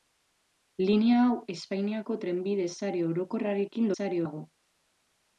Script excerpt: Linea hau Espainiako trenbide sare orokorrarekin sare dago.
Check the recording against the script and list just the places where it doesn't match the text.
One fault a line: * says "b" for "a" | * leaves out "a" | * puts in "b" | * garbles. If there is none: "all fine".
all fine